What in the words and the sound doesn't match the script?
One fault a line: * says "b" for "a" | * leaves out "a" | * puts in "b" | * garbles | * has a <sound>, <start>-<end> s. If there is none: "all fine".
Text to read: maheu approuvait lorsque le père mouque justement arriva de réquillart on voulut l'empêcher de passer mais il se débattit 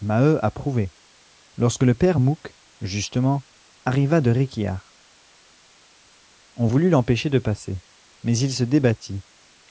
all fine